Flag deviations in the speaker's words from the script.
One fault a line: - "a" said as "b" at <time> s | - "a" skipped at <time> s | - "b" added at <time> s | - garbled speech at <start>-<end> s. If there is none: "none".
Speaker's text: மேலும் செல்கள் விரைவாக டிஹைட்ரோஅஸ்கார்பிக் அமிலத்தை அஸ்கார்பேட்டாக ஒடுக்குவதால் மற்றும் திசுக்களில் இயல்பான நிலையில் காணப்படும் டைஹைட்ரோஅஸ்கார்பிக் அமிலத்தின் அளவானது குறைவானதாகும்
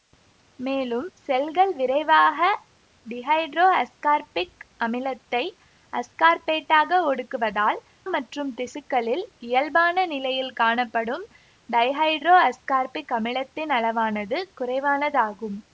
none